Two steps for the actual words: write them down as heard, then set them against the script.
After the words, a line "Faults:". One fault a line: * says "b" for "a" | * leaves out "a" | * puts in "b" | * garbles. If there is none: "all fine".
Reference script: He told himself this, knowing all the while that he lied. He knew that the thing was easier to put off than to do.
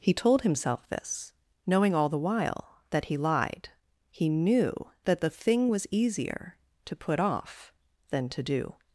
He told himself this, knowing all the while that he lied. He knew that the thing was easier to put off than to do.
Faults:
all fine